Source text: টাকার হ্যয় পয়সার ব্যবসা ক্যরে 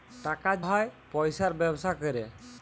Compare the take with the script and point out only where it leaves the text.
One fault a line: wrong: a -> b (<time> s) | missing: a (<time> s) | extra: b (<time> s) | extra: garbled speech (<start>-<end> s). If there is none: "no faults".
no faults